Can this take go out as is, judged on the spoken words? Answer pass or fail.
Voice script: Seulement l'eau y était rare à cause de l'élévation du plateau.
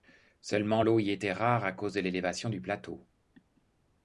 pass